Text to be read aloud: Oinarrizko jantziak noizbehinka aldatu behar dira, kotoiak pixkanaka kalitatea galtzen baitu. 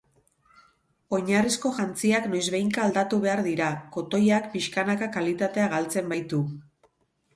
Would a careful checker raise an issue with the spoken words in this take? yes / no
no